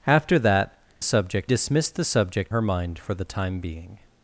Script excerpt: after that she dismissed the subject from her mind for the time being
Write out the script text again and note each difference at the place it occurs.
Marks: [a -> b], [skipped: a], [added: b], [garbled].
after that [she -> subject] dismissed the subject [skipped: from] her mind for the time being